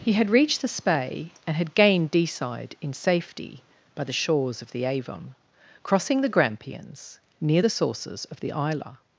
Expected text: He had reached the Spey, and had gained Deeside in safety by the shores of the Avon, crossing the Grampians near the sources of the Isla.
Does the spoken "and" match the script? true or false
true